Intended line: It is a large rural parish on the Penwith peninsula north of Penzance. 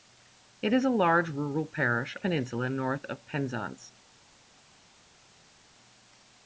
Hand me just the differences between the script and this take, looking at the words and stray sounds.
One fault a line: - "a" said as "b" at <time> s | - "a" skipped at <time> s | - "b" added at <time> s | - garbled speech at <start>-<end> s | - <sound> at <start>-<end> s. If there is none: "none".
- "on the Penwith" skipped at 2.2 s